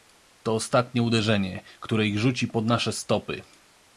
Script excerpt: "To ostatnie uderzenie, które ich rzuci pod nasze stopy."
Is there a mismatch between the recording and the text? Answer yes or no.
no